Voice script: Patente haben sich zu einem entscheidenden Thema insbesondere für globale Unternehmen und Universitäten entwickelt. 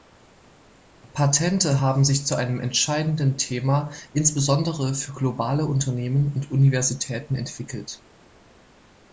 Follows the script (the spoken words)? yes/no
yes